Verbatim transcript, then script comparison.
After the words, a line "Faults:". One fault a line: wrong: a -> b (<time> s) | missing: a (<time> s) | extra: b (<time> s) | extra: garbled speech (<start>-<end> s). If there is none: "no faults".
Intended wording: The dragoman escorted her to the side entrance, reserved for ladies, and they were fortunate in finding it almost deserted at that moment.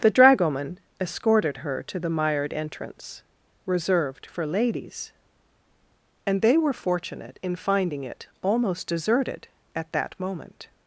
The dragoman escorted her to the mired entrance, reserved for ladies, and they were fortunate in finding it almost deserted at that moment.
Faults:
wrong: side -> mired (2.1 s)